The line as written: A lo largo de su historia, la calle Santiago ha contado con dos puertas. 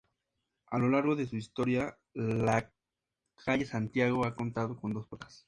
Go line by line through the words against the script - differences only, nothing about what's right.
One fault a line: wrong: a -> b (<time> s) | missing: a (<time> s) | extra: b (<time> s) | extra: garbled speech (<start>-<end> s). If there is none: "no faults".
no faults